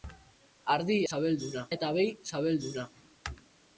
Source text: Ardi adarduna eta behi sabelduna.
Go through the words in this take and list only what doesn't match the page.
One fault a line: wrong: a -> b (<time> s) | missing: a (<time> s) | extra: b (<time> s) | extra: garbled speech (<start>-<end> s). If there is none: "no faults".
wrong: adarduna -> sabelduna (1.1 s)